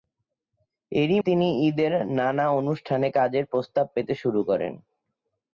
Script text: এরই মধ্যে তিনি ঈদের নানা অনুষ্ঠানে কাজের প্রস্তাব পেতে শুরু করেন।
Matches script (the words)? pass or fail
fail